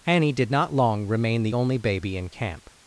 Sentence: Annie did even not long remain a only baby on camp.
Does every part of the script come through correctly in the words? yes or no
no